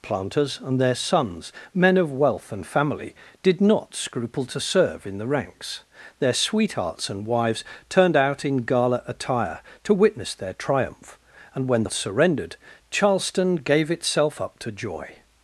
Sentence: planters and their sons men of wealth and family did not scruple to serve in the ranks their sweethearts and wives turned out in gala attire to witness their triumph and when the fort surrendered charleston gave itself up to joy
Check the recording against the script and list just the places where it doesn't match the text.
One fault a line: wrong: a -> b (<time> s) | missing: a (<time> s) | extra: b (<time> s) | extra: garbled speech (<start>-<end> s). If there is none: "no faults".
missing: fort (11.9 s)